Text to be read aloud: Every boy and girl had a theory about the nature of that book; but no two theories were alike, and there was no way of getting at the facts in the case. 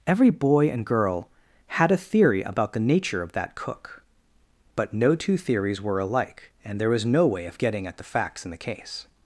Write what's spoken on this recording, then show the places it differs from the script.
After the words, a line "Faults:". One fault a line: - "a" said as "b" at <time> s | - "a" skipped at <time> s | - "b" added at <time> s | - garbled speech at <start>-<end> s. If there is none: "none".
Every boy and girl had a theory about the nature of that cook; but no two theories were alike, and there was no way of getting at the facts in the case.
Faults:
- "book" said as "cook" at 3.5 s